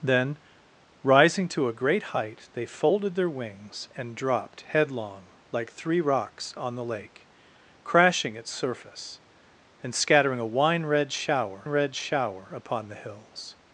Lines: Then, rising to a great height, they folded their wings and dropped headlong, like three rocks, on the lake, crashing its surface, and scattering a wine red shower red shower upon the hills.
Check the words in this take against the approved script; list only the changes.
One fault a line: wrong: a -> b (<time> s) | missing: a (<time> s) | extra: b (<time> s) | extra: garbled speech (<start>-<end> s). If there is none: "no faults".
no faults